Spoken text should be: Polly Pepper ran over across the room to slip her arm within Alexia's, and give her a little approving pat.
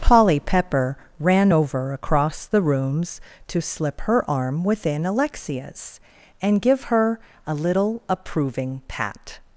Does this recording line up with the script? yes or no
no